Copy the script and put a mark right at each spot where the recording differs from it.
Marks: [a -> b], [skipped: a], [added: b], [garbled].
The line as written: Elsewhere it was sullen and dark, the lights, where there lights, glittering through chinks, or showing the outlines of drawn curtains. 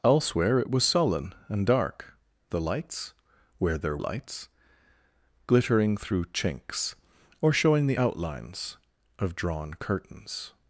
Elsewhere it was sullen and dark, the lights, where there lights, glittering through chinks, or showing the outlines of drawn curtains.